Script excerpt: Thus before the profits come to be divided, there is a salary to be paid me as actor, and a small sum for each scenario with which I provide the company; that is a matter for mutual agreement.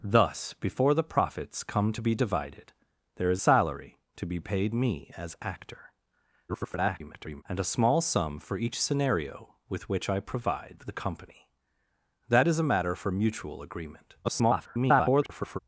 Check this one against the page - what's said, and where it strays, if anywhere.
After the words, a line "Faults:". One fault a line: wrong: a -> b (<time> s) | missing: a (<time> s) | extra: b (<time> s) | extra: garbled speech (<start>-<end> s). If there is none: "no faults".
Thus before the profits come to be divided, there is salary to be paid me as actor, [garbled] and a small sum for each scenario with which I provide the company; that is a matter for mutual agreement. [garbled]
Faults:
missing: a (3.4 s)
extra: garbled speech (6.5-7.4 s)
extra: garbled speech (14.2-15.6 s)